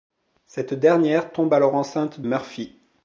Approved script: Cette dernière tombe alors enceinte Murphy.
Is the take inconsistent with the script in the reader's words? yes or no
no